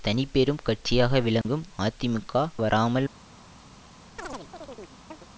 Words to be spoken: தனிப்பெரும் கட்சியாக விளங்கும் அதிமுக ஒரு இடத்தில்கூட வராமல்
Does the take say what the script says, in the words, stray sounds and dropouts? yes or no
no